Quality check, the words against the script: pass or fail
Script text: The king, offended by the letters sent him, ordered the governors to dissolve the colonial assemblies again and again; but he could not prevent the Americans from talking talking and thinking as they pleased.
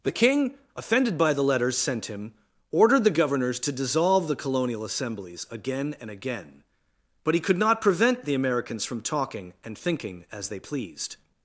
fail